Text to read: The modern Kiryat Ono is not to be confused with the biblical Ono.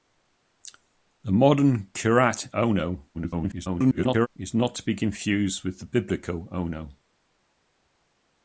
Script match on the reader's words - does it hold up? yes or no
no